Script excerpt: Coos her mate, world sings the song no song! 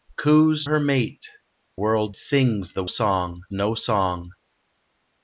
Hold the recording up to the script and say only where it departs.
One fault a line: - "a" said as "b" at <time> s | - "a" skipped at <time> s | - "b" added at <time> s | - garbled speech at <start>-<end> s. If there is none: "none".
none